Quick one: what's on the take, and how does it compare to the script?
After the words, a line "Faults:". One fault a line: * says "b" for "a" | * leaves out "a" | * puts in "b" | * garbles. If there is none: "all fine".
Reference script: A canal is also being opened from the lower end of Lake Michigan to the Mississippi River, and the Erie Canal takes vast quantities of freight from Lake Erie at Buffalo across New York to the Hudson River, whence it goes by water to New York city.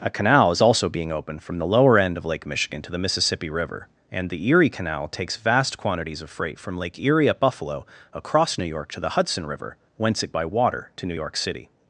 A canal is also being opened from the lower end of Lake Michigan to the Mississippi River, and the Erie Canal takes vast quantities of freight from Lake Erie at Buffalo across New York to the Hudson River, whence it by water to New York city.
Faults:
* leaves out "goes"